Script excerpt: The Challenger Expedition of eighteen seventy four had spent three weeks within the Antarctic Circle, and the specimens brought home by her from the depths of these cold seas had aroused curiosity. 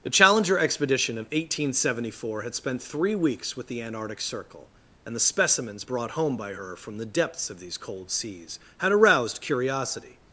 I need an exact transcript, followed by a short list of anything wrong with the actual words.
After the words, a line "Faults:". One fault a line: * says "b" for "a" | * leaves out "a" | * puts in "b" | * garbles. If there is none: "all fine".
The Challenger Expedition of eighteen seventy four had spent three weeks with the Antarctic Circle, and the specimens brought home by her from the depths of these cold seas had aroused curiosity.
Faults:
* says "with" for "within"